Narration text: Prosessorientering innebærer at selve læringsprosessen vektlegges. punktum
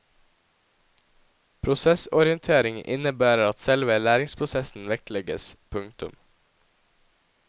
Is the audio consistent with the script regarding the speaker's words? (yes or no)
yes